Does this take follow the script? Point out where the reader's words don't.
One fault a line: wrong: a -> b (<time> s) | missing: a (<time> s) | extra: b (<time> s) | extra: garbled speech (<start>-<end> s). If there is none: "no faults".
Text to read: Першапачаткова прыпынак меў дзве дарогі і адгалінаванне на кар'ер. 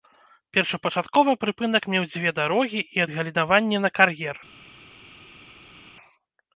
no faults